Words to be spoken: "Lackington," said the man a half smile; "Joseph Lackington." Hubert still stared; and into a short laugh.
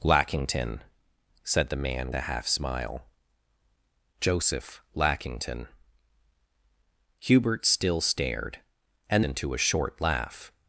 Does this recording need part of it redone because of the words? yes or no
no